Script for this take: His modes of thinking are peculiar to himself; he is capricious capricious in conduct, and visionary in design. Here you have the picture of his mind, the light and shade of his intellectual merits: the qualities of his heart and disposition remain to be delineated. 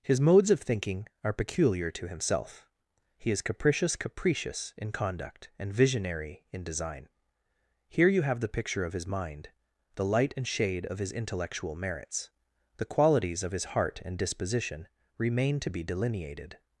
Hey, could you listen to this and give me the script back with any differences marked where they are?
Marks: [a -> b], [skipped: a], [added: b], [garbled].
His modes of thinking are peculiar to himself; he is capricious capricious in conduct, and visionary in design. Here you have the picture of his mind, the light and shade of his intellectual merits: the qualities of his heart and disposition remain to be delineated.